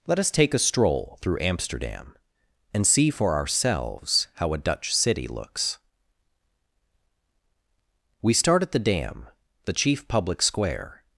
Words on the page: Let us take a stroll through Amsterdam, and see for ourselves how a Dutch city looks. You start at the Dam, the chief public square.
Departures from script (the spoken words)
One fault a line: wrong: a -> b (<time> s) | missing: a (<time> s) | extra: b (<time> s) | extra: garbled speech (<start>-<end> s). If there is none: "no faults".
wrong: You -> We (8.2 s)